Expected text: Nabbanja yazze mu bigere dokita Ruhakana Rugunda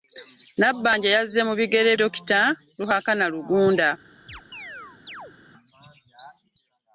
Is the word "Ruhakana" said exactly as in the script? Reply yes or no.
yes